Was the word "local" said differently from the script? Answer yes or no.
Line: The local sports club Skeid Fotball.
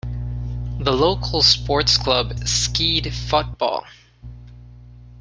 no